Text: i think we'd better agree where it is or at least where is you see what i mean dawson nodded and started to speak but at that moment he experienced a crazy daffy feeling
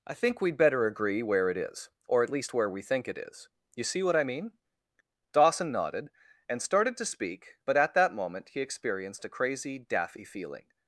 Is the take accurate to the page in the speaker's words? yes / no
no